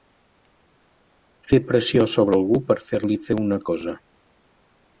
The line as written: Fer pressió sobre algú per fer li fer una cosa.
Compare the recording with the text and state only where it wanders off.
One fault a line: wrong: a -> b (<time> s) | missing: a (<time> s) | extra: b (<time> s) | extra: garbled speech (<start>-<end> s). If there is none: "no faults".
no faults